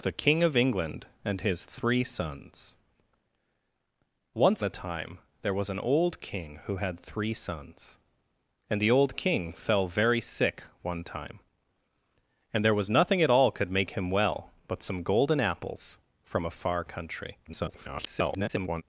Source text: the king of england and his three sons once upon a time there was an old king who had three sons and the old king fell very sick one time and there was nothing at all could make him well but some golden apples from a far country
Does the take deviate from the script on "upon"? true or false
true